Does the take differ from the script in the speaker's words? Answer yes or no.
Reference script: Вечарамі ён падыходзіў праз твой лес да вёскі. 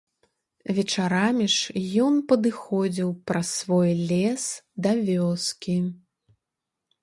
yes